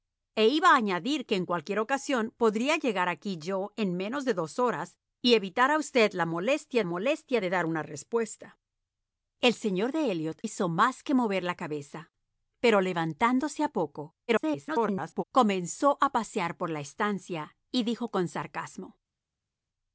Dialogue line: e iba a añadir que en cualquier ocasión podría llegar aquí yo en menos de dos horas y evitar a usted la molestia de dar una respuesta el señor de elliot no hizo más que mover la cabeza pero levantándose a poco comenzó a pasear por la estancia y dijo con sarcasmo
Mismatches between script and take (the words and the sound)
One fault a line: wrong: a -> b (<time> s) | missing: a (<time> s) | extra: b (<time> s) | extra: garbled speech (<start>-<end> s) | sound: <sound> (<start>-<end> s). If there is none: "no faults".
extra: molestia (6.8 s)
missing: no (10.4 s)
extra: garbled speech (14.3-15.2 s)